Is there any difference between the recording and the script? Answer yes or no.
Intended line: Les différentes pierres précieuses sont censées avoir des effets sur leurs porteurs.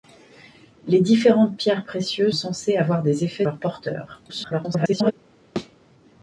yes